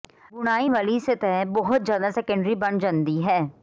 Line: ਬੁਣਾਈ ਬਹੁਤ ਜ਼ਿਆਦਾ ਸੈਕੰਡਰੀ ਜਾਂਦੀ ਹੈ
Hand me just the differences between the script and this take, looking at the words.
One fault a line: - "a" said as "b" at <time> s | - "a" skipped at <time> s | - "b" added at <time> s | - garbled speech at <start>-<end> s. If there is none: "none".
- "ਵਾਲੀ ਸਤਹ" added at 0.7 s
- "ਬਣ" added at 2.6 s